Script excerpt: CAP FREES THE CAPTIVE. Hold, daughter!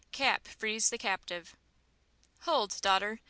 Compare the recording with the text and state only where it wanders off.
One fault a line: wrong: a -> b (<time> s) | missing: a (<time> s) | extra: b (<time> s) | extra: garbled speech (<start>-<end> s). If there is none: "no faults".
no faults